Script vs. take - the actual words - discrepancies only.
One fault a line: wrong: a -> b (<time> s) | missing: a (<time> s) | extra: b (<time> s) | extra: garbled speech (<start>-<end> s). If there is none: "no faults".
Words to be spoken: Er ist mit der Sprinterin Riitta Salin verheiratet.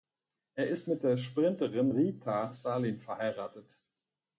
no faults